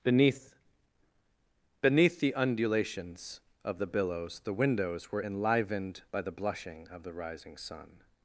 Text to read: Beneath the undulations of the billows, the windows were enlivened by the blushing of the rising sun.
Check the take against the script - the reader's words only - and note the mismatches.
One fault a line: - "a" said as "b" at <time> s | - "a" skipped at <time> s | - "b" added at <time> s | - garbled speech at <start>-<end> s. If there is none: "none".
- "beneath" added at 1.8 s